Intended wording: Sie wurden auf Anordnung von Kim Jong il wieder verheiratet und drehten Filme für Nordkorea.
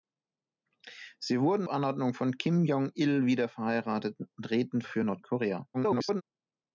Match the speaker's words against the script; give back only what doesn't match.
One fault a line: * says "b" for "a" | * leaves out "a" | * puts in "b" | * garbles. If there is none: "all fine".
* leaves out "auf"
* leaves out "Filme"
* garbles